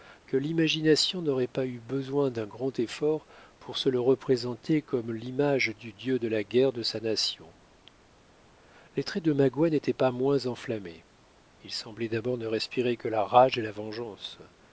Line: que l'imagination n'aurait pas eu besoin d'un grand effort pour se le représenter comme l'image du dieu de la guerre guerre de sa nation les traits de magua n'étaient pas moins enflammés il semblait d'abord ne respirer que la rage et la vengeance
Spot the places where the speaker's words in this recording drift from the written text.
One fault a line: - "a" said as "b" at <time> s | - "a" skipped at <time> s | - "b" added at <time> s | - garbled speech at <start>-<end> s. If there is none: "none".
- "guerre" skipped at 6.7 s